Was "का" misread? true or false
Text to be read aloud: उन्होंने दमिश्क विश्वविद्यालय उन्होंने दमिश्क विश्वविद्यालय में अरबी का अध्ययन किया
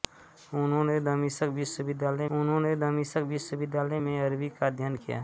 false